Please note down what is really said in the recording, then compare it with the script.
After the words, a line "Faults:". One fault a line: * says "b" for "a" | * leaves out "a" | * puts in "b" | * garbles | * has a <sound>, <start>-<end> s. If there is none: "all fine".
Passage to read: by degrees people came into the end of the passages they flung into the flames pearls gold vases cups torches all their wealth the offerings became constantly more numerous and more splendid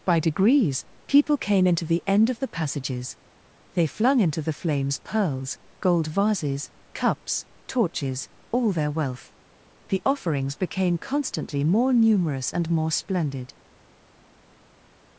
by degrees people came into the end of the passages they flung into the flames pearls gold vases cups torches all their wealth the offerings became constantly more numerous and more splendid
Faults:
all fine